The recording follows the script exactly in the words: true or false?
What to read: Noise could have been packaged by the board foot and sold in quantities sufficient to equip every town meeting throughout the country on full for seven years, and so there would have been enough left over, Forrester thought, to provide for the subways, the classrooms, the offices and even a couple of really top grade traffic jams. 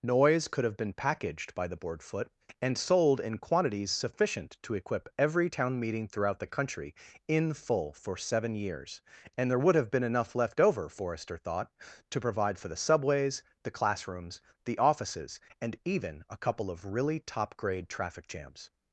false